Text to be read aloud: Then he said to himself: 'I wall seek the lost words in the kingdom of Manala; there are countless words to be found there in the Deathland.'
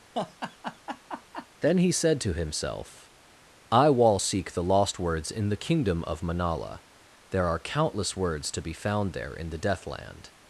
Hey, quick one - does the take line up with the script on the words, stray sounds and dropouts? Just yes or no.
no